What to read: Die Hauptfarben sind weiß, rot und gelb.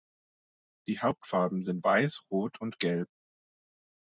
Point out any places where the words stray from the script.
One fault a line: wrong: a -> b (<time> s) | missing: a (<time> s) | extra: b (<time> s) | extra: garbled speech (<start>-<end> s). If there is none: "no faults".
no faults